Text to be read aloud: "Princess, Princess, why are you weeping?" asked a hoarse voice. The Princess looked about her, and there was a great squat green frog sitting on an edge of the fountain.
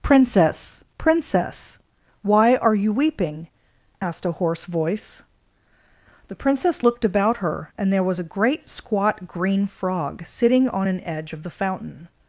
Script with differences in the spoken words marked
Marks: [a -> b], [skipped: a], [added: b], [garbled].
"Princess, Princess, why are you weeping?" asked a hoarse voice. The Princess looked about her, and there was a great squat green frog sitting on an edge of the fountain.